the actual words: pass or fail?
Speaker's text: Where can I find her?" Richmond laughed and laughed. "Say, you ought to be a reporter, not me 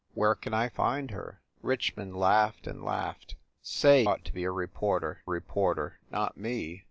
fail